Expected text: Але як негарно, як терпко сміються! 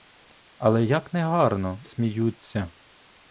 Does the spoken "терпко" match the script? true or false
false